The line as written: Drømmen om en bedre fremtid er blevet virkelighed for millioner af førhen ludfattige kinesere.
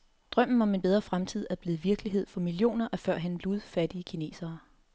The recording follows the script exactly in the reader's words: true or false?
true